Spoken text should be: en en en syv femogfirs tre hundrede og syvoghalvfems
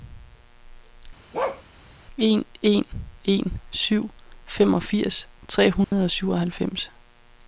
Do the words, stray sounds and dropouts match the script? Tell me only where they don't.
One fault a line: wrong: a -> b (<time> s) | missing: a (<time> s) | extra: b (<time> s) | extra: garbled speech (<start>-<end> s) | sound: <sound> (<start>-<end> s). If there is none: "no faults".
sound: bark (1.3-1.6 s)
sound: dropout (5.8-5.9 s)